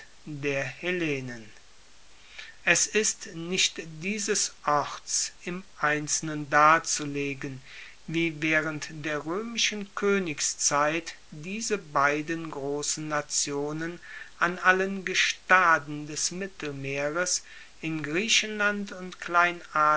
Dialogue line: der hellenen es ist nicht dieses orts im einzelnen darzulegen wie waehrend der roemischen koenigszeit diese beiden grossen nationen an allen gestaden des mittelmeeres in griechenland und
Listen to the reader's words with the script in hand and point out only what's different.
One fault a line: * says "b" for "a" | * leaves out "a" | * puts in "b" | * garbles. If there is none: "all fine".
all fine